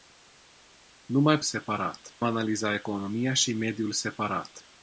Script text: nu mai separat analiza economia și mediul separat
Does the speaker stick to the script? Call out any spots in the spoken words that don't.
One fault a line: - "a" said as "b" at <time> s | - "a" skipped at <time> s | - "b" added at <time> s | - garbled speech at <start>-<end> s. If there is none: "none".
none